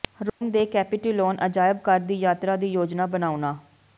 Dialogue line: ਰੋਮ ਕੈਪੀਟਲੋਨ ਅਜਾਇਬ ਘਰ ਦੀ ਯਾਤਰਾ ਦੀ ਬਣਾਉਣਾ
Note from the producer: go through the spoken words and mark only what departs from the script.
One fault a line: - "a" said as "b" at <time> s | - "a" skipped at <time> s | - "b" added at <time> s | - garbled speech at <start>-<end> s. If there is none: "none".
- "ਦੇ" added at 0.5 s
- "ਯੋਜਨਾ" added at 2.7 s